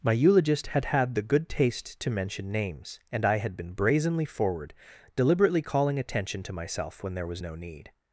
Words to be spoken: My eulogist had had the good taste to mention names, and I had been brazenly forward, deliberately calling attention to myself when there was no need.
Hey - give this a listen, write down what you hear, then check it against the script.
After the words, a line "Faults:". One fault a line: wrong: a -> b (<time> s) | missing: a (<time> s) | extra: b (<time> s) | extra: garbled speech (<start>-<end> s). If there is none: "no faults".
My eulogist had had the good taste to mention names, and I had been brazenly forward, deliberately calling attention to myself when there was no need.
Faults:
no faults